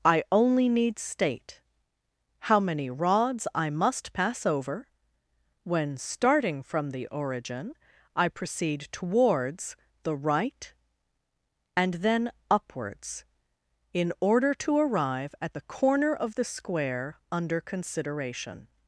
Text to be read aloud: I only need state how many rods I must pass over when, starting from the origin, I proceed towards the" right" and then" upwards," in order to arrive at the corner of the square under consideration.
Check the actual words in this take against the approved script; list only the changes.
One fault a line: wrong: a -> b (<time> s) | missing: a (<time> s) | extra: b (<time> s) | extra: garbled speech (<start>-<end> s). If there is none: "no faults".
no faults